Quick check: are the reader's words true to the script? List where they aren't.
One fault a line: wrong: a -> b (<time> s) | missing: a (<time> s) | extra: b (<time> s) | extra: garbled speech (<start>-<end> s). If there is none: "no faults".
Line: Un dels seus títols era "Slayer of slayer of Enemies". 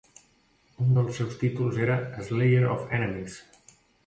missing: slayer of (2.9 s)